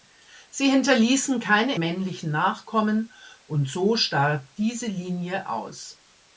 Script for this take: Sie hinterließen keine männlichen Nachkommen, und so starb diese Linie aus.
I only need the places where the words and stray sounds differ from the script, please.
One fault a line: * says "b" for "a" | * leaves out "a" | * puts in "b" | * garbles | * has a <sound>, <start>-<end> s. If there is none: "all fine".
all fine